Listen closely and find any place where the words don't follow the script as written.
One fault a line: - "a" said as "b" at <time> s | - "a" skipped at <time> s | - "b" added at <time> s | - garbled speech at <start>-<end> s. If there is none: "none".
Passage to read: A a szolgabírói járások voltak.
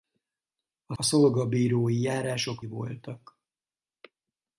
none